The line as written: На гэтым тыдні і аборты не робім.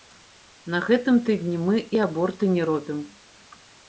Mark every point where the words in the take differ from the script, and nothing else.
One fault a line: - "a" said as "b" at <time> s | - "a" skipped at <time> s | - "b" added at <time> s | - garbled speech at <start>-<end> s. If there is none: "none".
- "мы" added at 1.6 s